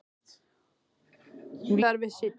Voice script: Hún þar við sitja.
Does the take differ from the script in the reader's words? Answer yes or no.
no